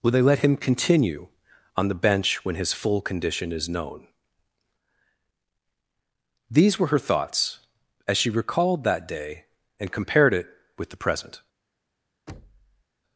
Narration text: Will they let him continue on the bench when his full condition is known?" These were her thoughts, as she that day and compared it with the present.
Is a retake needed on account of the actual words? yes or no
yes